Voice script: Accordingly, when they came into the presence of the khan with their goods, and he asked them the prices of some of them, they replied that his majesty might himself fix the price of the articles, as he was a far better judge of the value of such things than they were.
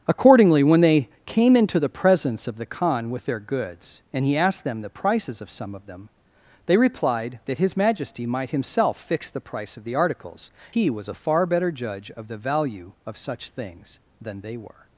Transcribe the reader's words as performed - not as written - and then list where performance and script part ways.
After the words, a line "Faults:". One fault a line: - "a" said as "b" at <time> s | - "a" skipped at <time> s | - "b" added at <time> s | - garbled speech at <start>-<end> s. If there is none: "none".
Accordingly, when they came into the presence of the khan with their goods, and he asked them the prices of some of them, they replied that his majesty might himself fix the price of the articles, he was a far better judge of the value of such things than they were.
Faults:
- "as" skipped at 10.5 s